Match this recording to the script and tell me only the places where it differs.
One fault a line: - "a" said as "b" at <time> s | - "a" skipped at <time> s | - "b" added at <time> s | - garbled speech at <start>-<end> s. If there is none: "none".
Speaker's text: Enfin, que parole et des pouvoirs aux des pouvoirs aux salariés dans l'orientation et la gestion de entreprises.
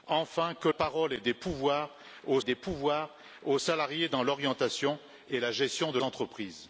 none